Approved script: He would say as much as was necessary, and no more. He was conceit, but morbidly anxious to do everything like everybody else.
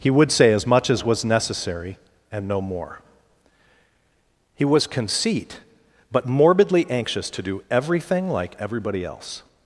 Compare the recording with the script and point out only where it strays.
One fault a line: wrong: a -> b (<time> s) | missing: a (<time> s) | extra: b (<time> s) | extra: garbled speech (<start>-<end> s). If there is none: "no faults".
no faults